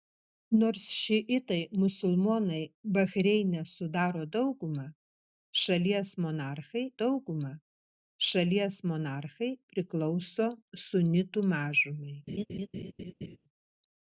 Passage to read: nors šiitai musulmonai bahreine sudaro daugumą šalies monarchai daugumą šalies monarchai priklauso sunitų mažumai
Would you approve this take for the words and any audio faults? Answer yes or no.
no